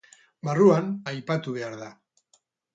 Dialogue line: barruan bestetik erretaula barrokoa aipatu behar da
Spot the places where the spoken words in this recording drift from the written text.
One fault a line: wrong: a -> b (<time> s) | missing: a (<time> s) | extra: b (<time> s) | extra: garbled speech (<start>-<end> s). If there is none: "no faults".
missing: bestetik erretaula barrokoa (0.9 s)